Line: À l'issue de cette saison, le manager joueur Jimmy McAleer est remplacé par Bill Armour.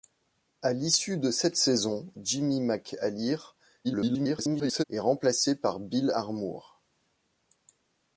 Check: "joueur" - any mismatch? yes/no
yes